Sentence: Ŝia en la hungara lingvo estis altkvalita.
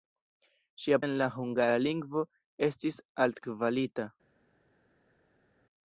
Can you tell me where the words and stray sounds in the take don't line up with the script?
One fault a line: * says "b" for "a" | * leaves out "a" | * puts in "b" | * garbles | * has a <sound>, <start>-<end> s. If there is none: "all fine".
all fine